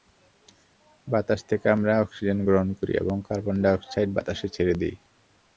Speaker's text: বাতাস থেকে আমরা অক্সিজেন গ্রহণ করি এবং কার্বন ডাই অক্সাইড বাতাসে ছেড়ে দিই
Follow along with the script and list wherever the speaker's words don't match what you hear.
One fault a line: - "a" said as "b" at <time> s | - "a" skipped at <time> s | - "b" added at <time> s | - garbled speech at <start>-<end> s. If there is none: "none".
none